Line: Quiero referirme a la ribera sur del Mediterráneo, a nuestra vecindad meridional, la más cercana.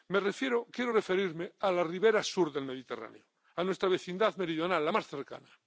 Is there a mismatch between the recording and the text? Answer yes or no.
no